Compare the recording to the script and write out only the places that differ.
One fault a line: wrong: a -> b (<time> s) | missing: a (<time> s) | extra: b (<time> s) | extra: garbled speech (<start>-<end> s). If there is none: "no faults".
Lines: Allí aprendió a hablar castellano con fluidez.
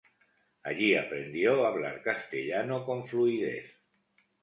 no faults